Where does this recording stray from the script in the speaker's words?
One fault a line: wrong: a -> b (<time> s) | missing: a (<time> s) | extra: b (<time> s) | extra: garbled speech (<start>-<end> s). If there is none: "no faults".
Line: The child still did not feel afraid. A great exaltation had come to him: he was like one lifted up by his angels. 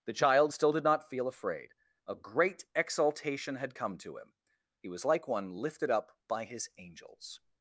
no faults